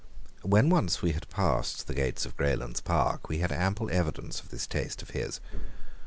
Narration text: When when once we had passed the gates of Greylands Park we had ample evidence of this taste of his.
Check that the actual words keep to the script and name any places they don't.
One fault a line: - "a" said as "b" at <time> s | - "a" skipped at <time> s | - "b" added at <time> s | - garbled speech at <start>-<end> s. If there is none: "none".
- "when" skipped at 0.7 s